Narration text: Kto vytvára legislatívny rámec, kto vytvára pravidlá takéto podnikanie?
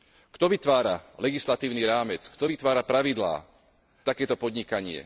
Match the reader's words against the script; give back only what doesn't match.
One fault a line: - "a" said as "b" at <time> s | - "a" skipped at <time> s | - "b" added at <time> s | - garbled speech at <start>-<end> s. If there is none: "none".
none